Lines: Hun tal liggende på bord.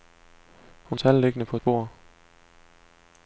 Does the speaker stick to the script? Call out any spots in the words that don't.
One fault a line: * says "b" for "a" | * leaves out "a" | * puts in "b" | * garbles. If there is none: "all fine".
all fine